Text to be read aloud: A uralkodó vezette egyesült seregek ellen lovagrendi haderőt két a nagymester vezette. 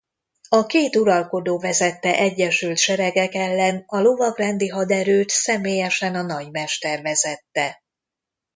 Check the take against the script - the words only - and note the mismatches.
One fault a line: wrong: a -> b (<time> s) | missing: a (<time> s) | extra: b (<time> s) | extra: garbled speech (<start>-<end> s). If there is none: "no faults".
extra: két (0.7 s)
extra: a (3.9 s)
wrong: két -> személyesen (5.3 s)